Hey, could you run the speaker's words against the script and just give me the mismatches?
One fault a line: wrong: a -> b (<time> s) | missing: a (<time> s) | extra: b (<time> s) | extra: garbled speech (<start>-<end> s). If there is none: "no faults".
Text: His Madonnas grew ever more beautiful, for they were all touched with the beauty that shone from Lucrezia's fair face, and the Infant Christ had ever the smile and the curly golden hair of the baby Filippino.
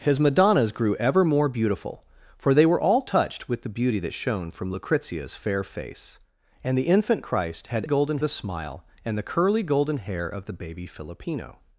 wrong: ever -> golden (7.8 s)